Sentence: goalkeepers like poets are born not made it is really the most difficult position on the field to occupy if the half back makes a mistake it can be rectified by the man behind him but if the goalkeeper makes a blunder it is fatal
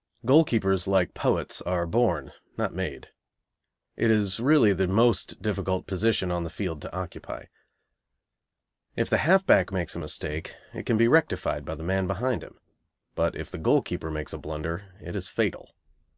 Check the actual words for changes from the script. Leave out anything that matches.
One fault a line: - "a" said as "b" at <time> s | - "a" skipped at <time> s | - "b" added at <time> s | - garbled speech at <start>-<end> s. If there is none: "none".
none